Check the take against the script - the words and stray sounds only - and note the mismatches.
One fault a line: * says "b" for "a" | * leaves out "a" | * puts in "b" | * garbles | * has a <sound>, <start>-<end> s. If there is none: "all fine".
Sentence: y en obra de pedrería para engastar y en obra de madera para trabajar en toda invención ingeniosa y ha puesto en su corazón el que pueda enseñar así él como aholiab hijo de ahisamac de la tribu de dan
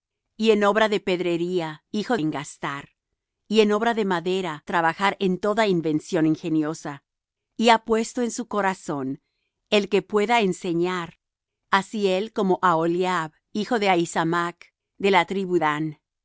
* says "hijo" for "para"
* leaves out "para"
* leaves out "de"